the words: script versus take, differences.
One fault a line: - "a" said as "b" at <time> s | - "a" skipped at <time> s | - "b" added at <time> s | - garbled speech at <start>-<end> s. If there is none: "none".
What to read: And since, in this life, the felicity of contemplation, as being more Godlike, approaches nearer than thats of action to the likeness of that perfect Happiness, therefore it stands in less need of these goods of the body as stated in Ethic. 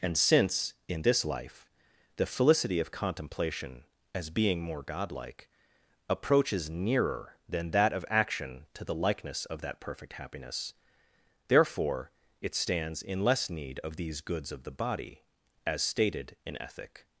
- "thats" said as "that" at 7.7 s